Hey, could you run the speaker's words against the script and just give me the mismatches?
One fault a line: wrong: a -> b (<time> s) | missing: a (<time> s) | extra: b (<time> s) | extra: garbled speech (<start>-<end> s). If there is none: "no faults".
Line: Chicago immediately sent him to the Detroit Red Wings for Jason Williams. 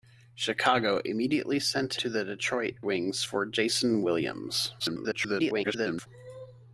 missing: him (2.0 s)
missing: Red (2.8 s)
extra: garbled speech (4.8-6.1 s)